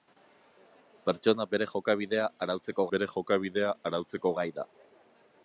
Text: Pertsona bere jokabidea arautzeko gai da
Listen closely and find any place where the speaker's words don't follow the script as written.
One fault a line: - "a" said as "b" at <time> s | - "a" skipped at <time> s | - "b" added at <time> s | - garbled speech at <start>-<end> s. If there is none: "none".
- "bere jokabidea arautzeko" added at 2.9 s